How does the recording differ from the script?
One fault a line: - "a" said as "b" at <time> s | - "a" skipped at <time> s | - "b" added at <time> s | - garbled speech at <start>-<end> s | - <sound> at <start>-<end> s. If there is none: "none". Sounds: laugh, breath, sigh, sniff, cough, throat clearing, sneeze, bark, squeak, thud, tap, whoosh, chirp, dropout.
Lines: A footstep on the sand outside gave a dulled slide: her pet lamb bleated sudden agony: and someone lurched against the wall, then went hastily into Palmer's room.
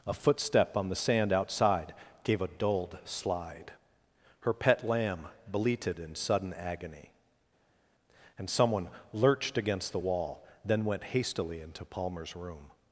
- "in" added at 6.0 s